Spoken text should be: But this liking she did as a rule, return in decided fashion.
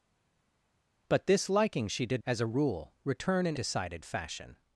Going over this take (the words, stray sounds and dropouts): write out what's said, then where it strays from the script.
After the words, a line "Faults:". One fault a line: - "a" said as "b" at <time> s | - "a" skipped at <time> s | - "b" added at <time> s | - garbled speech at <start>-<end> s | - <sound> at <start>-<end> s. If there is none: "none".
But this liking she did as a rule, return in decided fashion.
Faults:
none